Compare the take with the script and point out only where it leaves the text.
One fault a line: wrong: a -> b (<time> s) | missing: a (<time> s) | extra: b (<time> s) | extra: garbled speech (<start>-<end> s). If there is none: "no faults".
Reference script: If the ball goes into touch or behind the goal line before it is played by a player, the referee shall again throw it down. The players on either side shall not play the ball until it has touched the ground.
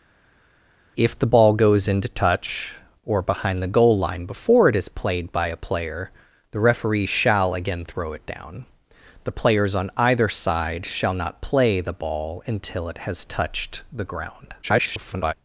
extra: garbled speech (14.6-15.3 s)